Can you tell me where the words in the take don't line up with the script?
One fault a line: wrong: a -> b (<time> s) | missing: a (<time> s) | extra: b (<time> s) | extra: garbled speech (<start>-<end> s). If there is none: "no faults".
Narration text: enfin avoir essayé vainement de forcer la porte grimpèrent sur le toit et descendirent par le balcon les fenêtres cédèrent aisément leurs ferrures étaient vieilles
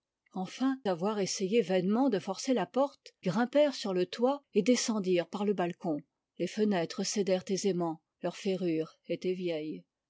no faults